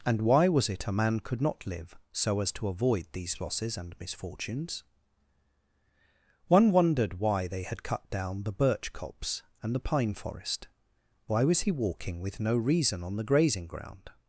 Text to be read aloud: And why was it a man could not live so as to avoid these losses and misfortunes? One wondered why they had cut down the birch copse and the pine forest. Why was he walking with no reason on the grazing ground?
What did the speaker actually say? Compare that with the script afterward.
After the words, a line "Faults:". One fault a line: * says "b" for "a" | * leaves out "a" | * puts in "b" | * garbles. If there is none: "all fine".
And why was it a man could not live so as to avoid these losses and misfortunes? One wondered why they had cut down the birch copse and the pine forest. Why was he walking with no reason on the grazing ground?
Faults:
all fine